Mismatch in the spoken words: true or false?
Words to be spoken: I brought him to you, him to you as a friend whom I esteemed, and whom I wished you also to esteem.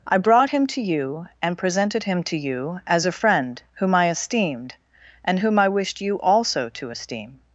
true